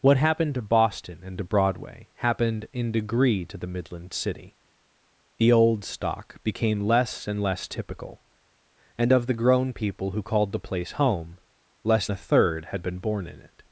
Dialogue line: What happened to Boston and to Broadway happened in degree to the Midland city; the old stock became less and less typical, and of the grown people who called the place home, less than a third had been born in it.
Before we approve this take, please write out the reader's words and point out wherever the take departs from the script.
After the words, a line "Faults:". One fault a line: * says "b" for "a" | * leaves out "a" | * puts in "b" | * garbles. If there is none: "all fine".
What happened to Boston and to Broadway happened in degree to the Midland city; the old stock became less and less typical, and of the grown people who called the place home, less a third had been born in it.
Faults:
* leaves out "than"